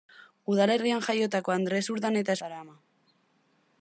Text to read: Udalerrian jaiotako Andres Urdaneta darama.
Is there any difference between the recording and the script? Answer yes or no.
no